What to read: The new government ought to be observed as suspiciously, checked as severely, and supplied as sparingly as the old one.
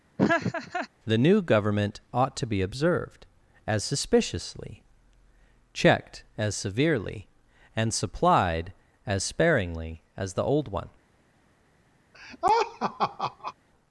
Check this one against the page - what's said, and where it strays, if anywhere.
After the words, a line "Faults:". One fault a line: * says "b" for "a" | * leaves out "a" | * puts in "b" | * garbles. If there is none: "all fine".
The new government ought to be observed as suspiciously, checked as severely, and supplied as sparingly as the old one.
Faults:
all fine